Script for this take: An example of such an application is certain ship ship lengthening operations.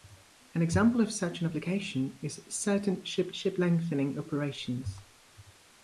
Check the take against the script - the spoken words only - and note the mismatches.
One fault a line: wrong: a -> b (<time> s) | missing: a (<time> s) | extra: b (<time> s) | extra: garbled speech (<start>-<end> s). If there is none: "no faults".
no faults